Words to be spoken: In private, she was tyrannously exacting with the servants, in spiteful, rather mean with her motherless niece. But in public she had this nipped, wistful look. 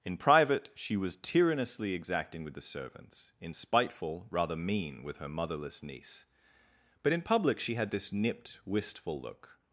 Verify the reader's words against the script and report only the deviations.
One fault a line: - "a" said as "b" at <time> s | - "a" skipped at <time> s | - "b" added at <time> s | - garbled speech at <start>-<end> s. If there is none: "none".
none